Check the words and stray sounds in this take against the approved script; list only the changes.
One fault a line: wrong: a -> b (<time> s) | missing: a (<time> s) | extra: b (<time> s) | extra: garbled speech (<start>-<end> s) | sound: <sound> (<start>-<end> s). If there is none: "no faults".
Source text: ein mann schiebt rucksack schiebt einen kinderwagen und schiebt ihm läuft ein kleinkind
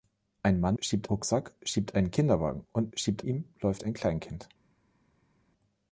no faults